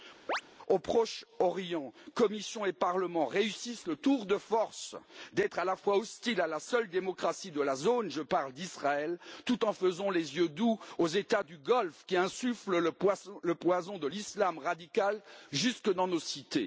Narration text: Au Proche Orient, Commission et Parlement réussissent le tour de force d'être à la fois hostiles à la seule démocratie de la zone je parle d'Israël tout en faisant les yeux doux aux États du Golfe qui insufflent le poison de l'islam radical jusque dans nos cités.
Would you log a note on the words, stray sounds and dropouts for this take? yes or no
yes